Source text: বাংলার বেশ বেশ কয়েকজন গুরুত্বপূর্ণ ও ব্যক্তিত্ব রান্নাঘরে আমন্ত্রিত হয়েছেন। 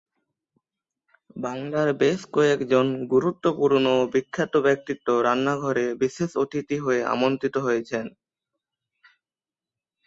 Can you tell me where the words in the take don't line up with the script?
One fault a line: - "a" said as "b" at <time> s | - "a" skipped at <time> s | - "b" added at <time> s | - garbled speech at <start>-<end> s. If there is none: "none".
- "বেশ" skipped at 2.2 s
- "বিখ্যাত" added at 4.1 s
- "বিশেষ অতিথি হয়ে" added at 6.0 s